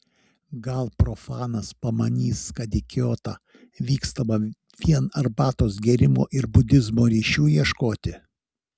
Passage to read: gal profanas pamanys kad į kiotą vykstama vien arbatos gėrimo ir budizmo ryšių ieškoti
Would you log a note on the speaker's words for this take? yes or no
no